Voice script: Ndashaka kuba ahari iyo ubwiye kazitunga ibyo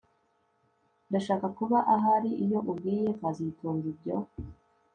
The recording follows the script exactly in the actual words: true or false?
true